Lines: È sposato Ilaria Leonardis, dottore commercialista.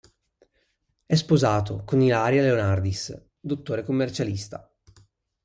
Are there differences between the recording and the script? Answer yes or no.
yes